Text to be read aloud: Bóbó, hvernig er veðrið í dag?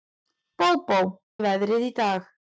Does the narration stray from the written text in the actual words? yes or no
yes